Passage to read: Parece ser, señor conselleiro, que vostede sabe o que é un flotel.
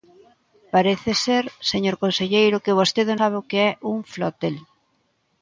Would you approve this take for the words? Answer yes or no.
yes